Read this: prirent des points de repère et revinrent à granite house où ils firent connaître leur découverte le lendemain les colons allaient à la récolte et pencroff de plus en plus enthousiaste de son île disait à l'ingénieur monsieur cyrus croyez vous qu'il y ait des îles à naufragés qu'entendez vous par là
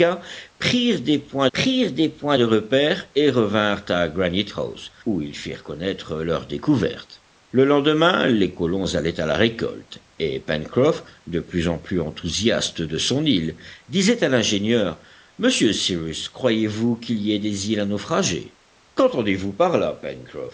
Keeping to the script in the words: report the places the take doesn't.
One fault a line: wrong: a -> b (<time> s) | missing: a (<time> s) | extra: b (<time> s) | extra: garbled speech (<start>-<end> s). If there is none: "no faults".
extra: prirent des points (1.5 s)